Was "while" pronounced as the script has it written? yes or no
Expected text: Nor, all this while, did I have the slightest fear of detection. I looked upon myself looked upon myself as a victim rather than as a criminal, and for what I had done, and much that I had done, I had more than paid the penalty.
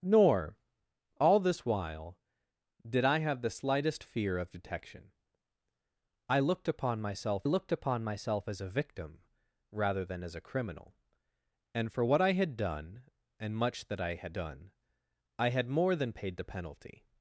yes